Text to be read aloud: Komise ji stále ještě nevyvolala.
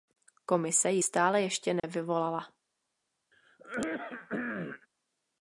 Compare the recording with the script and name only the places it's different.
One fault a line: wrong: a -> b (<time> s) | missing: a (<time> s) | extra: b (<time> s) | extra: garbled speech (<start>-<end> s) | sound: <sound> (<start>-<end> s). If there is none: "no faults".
sound: dropout (1.8-1.8 s)
sound: throat clearing (3.3-4.9 s)